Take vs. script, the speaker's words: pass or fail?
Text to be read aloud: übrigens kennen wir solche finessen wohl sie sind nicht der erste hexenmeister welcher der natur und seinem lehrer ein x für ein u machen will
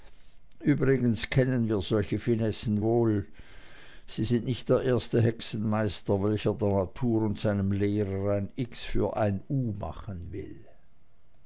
pass